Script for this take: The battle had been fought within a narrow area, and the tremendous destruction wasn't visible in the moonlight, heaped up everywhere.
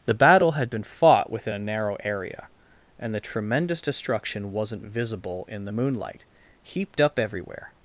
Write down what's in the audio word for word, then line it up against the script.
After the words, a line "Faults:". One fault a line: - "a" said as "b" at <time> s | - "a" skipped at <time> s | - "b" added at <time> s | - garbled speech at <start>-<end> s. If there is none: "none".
The battle had been fought within a narrow area, and the tremendous destruction wasn't visible in the moonlight, heaped up everywhere.
Faults:
none